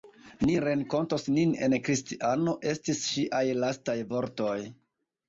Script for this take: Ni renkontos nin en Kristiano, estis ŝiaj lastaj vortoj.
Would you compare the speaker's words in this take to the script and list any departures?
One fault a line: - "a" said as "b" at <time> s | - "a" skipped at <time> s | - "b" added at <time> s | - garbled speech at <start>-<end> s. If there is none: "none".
none